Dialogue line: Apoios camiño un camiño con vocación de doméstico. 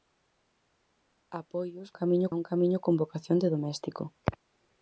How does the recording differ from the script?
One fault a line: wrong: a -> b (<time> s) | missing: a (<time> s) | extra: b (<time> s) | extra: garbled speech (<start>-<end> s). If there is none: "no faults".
no faults